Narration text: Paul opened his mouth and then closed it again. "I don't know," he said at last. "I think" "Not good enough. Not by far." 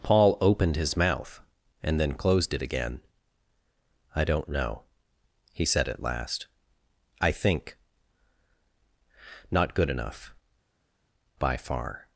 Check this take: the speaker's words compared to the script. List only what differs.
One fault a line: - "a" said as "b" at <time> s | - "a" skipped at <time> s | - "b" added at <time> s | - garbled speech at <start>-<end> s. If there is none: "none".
- "Not" skipped at 10.3 s